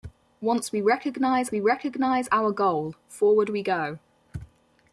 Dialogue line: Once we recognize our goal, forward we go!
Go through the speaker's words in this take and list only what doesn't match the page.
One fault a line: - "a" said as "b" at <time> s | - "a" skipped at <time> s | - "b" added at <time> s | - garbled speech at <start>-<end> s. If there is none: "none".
- "we recognize" added at 1.5 s